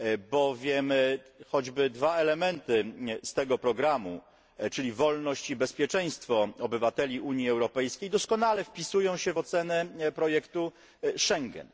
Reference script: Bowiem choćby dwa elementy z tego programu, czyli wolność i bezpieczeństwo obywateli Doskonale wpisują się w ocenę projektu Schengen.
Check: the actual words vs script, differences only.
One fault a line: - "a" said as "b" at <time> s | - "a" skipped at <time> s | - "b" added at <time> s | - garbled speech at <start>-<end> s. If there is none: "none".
- "Unii Europejskiej" added at 7.2 s